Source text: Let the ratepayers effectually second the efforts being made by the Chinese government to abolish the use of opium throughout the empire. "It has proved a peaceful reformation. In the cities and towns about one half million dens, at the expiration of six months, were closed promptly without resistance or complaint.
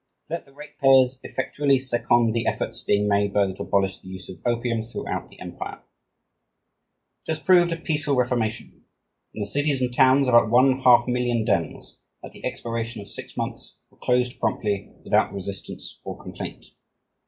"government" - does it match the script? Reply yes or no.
no